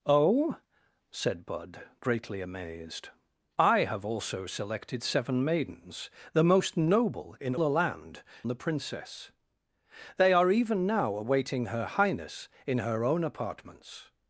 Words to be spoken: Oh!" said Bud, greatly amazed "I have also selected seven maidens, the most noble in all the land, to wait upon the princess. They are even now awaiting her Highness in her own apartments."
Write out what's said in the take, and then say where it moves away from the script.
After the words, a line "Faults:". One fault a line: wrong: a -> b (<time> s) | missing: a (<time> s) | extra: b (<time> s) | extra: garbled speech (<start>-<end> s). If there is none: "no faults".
Oh!" said Bud, greatly amazed "I have also selected seven maidens, the most noble in the land, the princess. They are even now awaiting her Highness in her own apartments."
Faults:
missing: all (7.5 s)
missing: to wait upon (8.2 s)